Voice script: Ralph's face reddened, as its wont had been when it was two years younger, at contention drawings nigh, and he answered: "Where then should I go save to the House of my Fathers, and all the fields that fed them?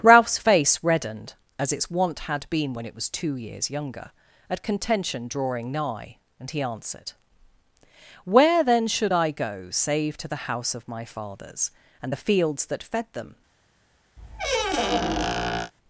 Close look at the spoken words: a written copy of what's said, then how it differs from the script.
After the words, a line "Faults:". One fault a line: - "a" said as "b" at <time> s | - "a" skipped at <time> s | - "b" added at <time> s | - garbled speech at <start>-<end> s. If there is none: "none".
Ralph's face reddened, as its wont had been when it was two years younger, at contention drawing nigh, and he answered: "Where then should I go save to the House of my Fathers, and the fields that fed them?
Faults:
- "drawings" said as "drawing" at 5.3 s
- "all" skipped at 12.1 s